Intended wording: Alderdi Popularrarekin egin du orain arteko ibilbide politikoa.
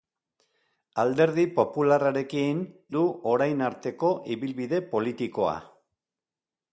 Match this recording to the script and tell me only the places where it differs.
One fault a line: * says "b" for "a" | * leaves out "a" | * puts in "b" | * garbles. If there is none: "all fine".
* leaves out "egin"